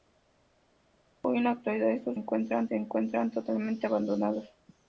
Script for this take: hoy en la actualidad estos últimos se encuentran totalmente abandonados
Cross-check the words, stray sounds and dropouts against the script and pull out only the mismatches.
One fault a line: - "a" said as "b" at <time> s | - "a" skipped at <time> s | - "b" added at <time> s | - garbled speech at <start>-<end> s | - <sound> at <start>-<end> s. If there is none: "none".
- "últimos" said as "encuentran" at 2.1 s